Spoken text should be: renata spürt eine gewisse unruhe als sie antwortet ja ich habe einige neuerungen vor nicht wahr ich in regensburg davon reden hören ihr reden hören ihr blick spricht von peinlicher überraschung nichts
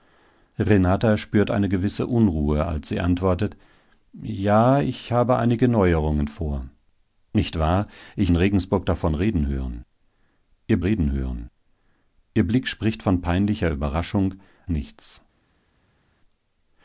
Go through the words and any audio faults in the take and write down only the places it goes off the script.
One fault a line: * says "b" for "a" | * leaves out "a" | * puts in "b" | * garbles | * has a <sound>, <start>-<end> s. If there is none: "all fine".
all fine